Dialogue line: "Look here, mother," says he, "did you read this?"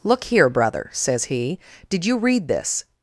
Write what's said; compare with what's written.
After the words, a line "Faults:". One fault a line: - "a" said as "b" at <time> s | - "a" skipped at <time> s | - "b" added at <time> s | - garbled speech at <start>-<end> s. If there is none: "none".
"Look here, brother," says he, "did you read this?"
Faults:
- "mother" said as "brother" at 0.5 s